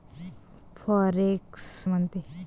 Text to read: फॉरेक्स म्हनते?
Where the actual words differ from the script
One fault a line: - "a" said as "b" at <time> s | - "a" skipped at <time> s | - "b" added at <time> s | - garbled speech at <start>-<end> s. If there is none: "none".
none